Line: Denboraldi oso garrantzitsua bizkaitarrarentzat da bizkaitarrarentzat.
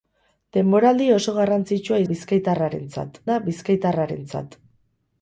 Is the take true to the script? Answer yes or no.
yes